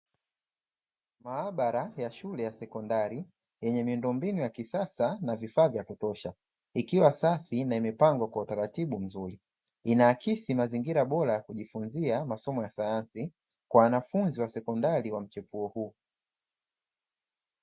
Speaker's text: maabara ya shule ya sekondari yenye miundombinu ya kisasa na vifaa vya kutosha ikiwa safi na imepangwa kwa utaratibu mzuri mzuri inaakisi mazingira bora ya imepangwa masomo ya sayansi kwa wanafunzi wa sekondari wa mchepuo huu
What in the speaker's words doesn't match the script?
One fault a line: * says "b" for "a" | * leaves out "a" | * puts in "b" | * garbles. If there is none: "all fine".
* leaves out "mzuri"
* says "kujifunzia" for "imepangwa"